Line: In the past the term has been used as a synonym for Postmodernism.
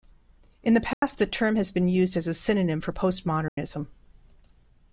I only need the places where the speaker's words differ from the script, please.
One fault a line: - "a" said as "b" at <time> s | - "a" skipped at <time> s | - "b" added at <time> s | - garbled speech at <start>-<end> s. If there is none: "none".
none